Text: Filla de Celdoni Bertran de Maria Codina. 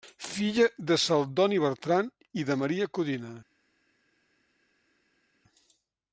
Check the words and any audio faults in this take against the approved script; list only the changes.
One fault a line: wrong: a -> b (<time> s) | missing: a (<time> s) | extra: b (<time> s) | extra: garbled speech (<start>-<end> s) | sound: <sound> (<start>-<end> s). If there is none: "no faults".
extra: i (2.3 s)